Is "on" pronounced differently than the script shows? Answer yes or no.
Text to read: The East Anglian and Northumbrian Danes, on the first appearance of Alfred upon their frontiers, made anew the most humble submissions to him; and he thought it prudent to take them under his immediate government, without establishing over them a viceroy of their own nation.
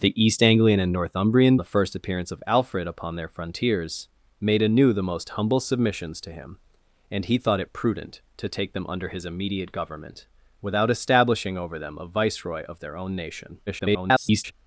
yes